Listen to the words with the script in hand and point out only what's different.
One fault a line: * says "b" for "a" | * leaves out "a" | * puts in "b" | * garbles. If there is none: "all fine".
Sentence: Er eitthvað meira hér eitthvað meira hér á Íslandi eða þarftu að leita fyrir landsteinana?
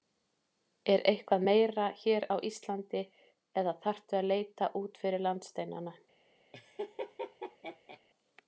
* leaves out "eitthvað meira hér"
* puts in "út"